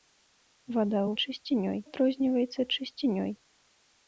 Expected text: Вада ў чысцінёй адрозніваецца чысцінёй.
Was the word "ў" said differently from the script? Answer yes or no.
no